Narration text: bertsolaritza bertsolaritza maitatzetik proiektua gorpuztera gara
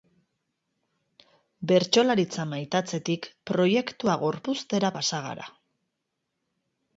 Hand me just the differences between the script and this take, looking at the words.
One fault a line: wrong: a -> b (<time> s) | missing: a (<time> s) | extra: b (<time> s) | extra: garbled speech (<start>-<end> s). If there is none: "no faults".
missing: bertsolaritza (2.5 s)
extra: pasa (5.0 s)